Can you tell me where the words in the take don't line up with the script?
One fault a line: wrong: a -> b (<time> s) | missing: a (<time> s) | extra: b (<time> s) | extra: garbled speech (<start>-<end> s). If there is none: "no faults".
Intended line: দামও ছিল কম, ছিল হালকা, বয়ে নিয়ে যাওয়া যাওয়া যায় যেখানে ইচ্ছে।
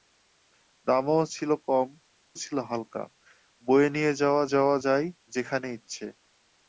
no faults